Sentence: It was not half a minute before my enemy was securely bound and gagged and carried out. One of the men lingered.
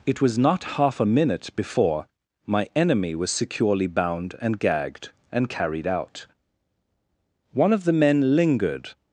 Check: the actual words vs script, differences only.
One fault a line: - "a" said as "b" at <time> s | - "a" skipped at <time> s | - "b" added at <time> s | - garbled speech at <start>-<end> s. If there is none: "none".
none